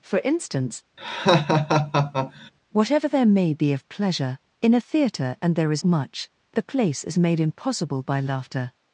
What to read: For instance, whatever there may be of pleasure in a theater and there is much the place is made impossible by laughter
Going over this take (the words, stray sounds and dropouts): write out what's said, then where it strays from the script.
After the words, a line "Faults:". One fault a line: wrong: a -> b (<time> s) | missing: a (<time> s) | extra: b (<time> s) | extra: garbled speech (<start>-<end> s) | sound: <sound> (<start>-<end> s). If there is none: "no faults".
For instance, whatever there may be of pleasure in a theater and there is much the place is made impossible by laughter
Faults:
sound: laugh (1.0-2.5 s)